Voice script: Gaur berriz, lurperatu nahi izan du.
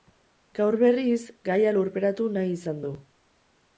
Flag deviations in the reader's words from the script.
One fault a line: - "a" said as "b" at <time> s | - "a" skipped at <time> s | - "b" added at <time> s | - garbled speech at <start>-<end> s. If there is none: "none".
- "gaia" added at 1.5 s